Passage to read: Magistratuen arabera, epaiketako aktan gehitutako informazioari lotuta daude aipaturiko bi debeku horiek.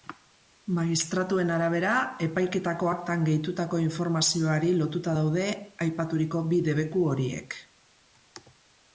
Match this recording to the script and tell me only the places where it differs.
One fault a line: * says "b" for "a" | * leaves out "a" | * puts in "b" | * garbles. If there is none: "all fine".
all fine